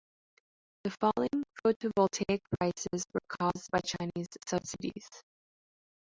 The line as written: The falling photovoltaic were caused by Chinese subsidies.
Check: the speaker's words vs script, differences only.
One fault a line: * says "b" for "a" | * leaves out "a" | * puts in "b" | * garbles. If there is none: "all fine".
* puts in "prices"